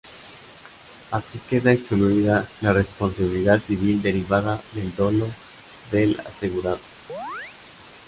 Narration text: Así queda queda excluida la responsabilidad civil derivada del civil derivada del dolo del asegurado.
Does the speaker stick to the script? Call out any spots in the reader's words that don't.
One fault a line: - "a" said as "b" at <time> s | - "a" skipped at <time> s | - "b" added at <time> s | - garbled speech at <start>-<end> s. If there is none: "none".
- "queda" skipped at 1.7 s
- "civil derivada del" skipped at 5.0 s